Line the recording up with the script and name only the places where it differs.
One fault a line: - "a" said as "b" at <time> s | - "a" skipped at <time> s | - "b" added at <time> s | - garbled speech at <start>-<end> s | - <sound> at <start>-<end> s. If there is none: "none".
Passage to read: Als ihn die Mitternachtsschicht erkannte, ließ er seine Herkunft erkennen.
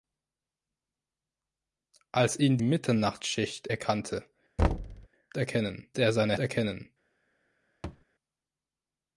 - "die" skipped at 2.6 s
- thud at 4.6-5.1 s
- "ließ" said as "erkennen" at 5.4 s
- "Herkunft" skipped at 6.4 s
- thud at 7.8-8.0 s